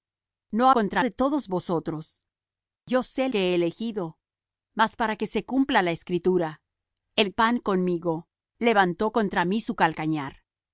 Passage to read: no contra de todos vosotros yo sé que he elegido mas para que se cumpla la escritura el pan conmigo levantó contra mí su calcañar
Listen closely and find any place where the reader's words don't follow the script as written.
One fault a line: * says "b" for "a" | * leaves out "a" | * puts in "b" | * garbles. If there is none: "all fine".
all fine